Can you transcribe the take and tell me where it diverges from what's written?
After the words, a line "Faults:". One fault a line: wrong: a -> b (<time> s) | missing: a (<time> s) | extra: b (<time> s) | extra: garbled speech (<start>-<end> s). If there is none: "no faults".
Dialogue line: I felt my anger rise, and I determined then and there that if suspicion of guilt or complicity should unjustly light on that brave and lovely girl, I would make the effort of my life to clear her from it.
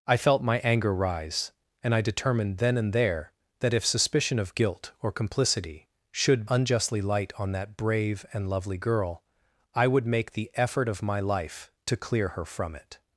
I felt my anger rise, and I determined then and there that if suspicion of guilt or complicity should unjustly light on that brave and lovely girl, I would make the effort of my life to clear her from it.
Faults:
no faults